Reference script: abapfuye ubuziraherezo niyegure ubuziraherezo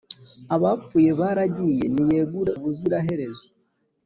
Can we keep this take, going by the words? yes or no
no